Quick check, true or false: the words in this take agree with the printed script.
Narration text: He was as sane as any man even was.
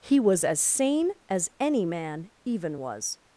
true